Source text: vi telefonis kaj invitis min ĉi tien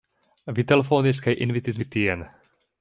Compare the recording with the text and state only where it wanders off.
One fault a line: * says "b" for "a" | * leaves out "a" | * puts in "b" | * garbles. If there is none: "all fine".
* leaves out "min"